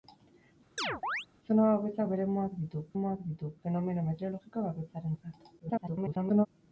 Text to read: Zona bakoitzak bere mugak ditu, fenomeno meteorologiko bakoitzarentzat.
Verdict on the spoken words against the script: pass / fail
fail